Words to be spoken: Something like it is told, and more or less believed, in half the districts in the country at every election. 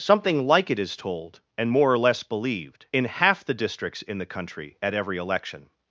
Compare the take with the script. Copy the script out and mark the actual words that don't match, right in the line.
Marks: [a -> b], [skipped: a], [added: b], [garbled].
Something like it is told, and more or less believed, in half the districts in the country at every election.